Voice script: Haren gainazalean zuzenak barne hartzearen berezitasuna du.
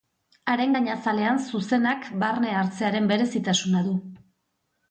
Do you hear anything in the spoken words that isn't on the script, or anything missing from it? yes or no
no